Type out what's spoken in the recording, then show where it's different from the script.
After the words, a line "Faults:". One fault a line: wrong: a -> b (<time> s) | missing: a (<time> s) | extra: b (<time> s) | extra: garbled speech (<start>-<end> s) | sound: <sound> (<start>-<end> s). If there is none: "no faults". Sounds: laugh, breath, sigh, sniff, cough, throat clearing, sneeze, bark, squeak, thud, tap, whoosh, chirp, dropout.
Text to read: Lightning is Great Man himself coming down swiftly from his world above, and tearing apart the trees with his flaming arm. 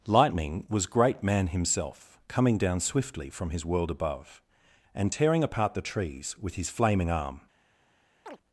Lightning was Great Man himself coming down swiftly from his world above, and tearing apart the trees with his flaming arm.
Faults:
wrong: is -> was (0.7 s)
sound: chirp (8.3-8.4 s)